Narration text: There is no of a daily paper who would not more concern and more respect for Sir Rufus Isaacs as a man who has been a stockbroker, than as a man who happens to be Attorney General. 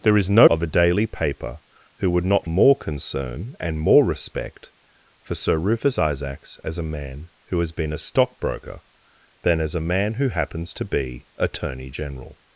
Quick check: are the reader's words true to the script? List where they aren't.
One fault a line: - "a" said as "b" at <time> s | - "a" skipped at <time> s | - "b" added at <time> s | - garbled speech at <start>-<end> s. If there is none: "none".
none